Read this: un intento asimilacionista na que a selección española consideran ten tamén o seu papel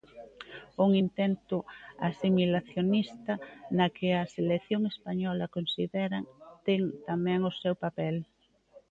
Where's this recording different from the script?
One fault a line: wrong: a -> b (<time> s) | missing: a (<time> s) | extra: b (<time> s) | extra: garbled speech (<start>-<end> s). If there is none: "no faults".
no faults